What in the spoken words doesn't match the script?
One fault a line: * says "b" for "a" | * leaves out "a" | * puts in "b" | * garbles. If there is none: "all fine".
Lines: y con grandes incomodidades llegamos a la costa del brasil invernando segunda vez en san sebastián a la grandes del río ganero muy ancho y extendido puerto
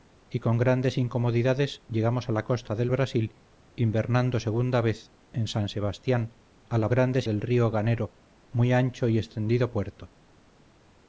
all fine